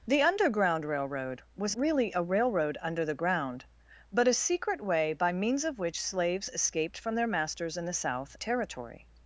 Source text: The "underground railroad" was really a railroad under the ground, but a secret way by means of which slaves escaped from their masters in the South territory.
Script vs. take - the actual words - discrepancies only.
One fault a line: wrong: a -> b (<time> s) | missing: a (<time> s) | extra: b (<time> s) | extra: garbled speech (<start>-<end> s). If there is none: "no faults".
no faults